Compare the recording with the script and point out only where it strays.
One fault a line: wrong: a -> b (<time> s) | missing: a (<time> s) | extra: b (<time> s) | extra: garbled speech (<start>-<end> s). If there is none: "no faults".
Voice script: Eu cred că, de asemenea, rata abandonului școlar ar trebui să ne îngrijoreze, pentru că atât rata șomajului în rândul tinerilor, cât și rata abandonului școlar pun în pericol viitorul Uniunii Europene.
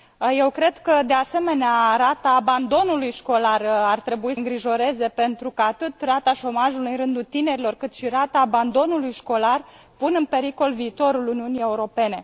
missing: să ne (4.3 s)